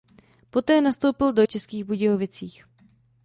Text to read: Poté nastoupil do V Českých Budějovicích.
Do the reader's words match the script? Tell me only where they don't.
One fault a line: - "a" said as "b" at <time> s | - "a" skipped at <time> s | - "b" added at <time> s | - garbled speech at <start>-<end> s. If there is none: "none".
none